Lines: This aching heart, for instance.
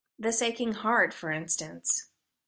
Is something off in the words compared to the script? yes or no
no